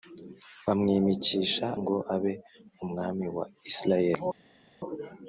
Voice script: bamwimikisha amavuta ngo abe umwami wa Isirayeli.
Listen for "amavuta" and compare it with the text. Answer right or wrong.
wrong